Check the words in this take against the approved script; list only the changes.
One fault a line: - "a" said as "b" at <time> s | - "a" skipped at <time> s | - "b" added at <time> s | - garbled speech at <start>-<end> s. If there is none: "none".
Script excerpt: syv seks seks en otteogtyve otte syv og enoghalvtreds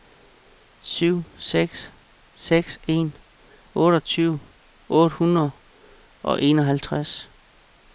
- "syv" said as "hundrede" at 5.2 s